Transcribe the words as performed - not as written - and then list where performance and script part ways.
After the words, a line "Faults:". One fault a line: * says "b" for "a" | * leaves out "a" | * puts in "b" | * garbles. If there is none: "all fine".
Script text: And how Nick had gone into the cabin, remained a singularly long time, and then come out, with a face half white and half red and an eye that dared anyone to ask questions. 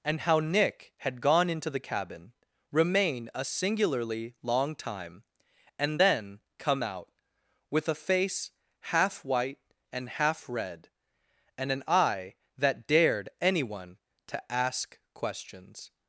And how Nick had gone into the cabin, remain a singularly long time, and then come out, with a face half white and half red and an eye that dared anyone to ask questions.
Faults:
* says "remain" for "remained"